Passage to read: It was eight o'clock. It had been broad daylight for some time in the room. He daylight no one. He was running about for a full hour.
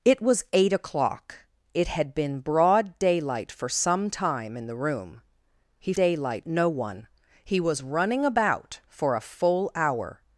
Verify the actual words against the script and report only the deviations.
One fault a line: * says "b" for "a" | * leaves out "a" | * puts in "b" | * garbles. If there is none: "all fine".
all fine